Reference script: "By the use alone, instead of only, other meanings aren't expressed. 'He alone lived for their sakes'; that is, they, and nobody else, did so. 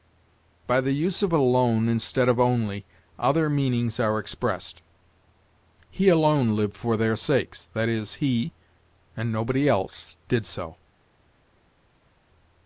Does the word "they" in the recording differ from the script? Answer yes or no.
yes